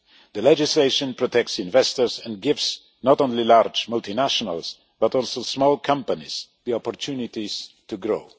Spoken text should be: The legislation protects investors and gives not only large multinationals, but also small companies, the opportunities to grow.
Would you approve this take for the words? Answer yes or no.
yes